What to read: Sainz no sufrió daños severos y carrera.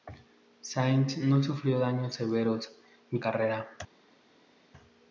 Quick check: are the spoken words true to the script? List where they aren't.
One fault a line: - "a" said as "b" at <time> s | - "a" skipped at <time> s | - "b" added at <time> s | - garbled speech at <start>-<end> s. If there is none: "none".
none